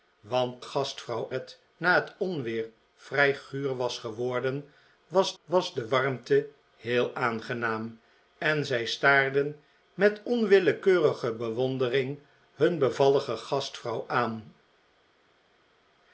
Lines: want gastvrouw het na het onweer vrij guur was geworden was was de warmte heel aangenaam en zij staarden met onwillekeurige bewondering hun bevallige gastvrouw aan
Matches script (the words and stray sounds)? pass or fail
pass